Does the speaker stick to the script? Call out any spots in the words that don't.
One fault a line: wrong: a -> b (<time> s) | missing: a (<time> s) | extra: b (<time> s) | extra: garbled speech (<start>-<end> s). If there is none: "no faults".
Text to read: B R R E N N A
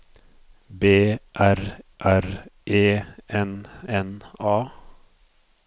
no faults